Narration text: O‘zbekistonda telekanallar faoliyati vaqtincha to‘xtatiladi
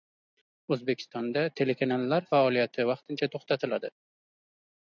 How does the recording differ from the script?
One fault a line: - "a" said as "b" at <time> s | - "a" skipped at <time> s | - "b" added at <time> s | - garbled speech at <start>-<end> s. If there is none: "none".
none